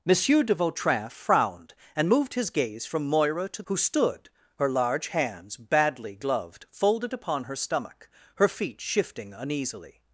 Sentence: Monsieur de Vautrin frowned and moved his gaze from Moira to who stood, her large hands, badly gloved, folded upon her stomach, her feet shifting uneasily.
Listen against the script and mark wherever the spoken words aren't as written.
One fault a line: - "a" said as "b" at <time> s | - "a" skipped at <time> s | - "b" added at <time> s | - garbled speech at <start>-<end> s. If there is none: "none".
none